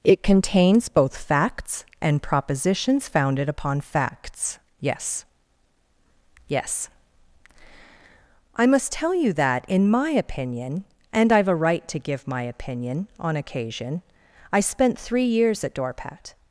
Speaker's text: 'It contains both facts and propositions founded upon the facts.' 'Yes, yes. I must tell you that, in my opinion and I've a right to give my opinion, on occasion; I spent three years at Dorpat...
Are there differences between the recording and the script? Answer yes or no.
yes